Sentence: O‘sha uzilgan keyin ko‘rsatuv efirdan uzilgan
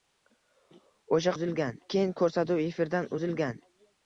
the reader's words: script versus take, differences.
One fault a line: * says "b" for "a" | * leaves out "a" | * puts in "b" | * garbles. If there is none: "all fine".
all fine